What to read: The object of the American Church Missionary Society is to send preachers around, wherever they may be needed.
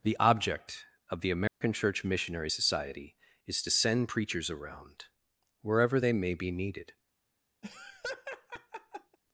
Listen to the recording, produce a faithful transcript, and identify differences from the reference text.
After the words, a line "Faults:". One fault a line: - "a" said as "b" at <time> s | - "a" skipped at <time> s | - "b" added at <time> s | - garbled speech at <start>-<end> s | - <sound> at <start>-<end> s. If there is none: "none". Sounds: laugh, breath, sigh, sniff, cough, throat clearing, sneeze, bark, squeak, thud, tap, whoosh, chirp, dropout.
The object of the American Church Missionary Society is to send preachers around, wherever they may be needed.
Faults:
- dropout at 1.5-1.6 s
- laugh at 7.6-9.2 s